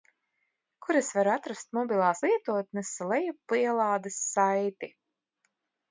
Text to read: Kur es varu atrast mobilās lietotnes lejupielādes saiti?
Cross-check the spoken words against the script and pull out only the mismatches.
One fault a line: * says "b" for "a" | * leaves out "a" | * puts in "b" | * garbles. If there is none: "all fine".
all fine